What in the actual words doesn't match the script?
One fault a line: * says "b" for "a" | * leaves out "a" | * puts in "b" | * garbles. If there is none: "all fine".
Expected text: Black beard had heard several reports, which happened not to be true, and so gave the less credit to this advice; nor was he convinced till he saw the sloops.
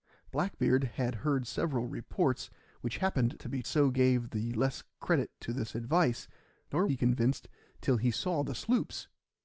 * leaves out "not"
* leaves out "true and"
* leaves out "was"